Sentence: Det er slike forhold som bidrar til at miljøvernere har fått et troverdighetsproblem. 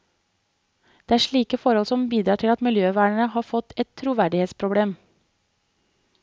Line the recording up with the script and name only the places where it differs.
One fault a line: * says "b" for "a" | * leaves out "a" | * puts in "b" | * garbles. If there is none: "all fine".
all fine